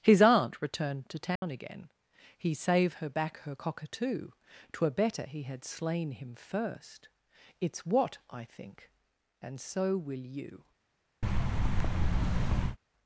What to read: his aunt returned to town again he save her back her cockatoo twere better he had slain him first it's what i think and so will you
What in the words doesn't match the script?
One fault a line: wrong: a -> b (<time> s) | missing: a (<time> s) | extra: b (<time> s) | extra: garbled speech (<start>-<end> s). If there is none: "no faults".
no faults